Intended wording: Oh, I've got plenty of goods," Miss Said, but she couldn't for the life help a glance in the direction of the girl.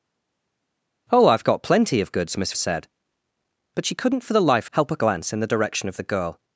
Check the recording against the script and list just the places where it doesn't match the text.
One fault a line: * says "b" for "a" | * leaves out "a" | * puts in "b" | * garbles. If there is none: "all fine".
all fine